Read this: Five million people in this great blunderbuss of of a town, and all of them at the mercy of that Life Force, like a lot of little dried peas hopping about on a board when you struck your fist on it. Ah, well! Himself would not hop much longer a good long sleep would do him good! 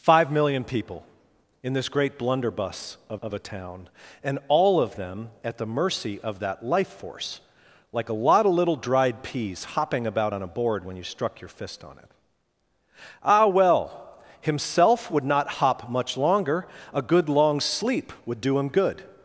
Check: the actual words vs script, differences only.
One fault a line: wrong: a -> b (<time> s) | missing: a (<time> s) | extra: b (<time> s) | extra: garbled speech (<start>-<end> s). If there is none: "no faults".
no faults